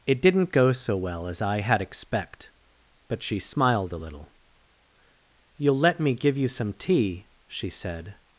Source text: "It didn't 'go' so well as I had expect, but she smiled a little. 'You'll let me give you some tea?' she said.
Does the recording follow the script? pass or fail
pass